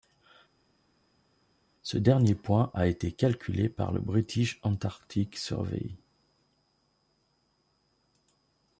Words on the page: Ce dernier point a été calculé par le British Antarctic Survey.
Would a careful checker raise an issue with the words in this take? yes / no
no